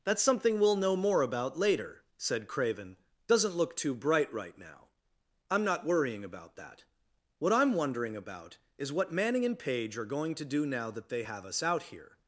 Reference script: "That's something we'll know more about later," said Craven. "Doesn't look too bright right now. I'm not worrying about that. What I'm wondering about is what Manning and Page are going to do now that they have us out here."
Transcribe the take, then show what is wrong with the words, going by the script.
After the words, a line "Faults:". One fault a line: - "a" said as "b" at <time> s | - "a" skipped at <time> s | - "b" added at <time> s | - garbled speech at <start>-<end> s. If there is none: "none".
"That's something we'll know more about later," said Craven. "Doesn't look too bright right now. I'm not worrying about that. What I'm wondering about is what Manning and Page are going to do now that they have us out here."
Faults:
none